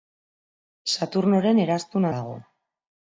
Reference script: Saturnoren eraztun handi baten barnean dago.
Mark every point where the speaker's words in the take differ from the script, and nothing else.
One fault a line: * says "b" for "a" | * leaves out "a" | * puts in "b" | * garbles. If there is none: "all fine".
* leaves out "handi baten barnean"